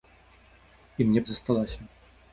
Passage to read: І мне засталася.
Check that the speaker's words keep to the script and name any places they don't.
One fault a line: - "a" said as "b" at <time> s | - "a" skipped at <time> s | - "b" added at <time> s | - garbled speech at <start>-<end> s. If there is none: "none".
none